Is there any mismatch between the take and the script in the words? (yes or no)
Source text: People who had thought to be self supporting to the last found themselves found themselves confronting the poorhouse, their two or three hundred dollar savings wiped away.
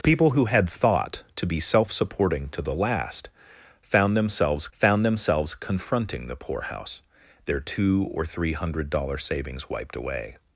no